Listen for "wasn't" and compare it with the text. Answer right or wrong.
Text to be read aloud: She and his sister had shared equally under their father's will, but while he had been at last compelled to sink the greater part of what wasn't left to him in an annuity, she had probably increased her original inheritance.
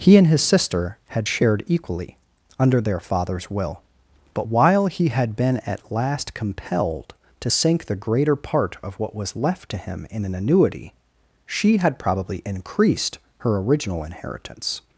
wrong